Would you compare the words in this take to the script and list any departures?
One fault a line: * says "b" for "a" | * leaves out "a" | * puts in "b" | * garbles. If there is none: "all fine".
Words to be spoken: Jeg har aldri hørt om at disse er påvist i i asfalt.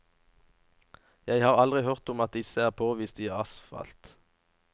* leaves out "i"